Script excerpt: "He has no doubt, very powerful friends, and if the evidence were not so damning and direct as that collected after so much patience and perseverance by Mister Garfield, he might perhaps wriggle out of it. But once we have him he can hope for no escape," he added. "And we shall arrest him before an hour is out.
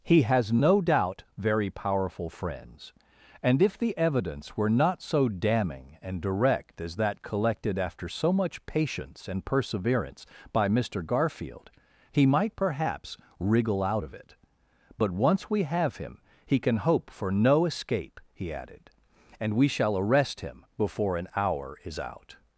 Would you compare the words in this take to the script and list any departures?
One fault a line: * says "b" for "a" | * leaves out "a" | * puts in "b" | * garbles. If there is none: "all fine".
all fine